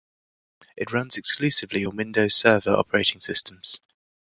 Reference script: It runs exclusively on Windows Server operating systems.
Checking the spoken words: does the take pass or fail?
pass